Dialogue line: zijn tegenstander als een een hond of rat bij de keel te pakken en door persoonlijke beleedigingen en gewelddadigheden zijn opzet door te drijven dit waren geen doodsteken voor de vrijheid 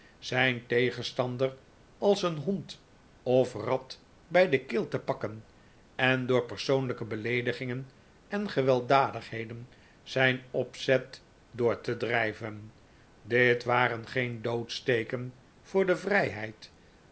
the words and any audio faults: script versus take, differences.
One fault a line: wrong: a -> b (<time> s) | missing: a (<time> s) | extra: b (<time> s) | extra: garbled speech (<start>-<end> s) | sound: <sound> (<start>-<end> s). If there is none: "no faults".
missing: een (2.4 s)